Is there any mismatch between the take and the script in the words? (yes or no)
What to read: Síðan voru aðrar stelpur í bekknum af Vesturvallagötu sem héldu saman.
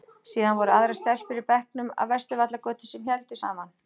no